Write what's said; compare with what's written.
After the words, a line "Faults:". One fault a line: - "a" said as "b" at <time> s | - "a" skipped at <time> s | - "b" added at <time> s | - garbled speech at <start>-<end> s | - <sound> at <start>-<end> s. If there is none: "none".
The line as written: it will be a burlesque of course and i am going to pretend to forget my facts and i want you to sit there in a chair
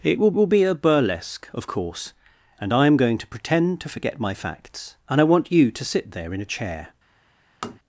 it will will be a burlesque of course and i am going to pretend to forget my facts and i want you to sit there in a chair
Faults:
- "will" added at 0.3 s
- tap at 7.6-7.8 s